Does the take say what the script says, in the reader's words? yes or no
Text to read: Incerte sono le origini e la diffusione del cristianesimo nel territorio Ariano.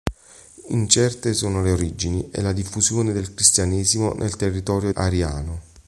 yes